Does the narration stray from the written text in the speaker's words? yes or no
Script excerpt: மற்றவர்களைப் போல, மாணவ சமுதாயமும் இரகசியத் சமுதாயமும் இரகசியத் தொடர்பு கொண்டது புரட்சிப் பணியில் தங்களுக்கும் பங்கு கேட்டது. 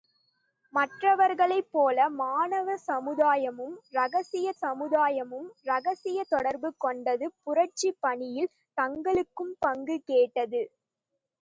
no